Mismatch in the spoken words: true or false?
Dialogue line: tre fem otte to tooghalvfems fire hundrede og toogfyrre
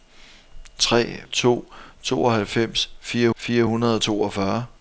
true